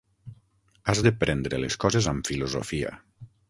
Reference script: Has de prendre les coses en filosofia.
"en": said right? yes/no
no